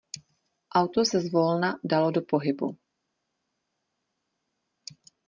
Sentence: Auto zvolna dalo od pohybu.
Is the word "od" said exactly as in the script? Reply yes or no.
no